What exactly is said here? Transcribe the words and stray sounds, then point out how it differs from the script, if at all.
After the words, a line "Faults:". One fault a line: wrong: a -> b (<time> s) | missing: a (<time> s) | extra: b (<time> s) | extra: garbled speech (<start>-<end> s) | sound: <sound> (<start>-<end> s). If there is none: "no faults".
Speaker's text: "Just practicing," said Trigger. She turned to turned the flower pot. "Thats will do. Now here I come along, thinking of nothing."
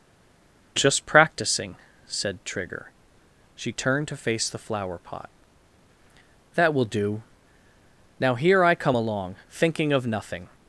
"Just practicing," said Trigger. She turned to face the flower pot. "That will do. Now here I come along, thinking of nothing."
Faults:
wrong: turned -> face (4.2 s)
wrong: Thats -> That (6.5 s)